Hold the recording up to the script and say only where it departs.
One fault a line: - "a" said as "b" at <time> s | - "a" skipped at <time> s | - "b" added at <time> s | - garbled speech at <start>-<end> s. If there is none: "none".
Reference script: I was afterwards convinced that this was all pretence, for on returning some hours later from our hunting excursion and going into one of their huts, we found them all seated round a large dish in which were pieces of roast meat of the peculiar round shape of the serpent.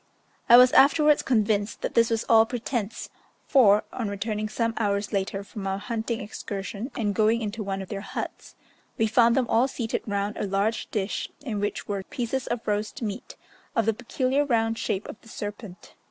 none